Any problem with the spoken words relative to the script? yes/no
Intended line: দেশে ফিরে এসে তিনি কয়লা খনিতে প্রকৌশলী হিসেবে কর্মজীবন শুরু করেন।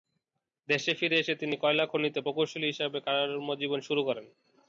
no